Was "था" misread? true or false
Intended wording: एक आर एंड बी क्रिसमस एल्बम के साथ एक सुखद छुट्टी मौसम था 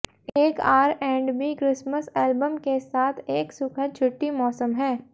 true